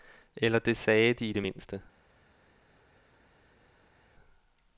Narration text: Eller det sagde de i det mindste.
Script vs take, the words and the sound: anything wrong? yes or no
no